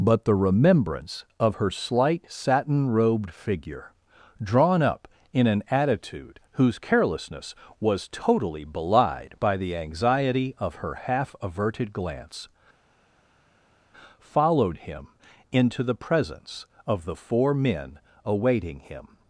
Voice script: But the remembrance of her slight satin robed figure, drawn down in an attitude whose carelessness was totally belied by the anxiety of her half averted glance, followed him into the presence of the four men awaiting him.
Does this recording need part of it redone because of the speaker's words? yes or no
yes